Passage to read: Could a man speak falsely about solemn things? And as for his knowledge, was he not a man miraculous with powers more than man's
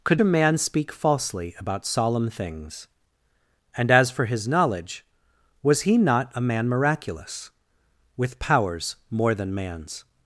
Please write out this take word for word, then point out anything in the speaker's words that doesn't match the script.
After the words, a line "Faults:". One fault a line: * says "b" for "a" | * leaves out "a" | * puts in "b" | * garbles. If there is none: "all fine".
Could a man speak falsely about solemn things? And as for his knowledge, was he not a man miraculous with powers more than man's
Faults:
all fine